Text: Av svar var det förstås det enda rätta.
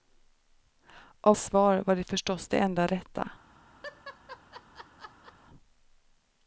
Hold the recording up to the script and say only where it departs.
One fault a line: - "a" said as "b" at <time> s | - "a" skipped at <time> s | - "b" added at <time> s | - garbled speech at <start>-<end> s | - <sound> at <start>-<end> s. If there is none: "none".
- laugh at 3.8-5.3 s